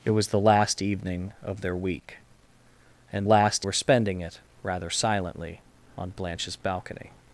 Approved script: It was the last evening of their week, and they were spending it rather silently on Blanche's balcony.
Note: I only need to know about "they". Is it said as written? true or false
false